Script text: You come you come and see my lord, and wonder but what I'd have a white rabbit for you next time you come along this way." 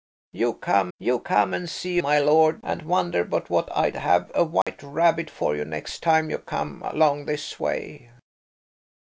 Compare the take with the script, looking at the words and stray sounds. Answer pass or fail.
fail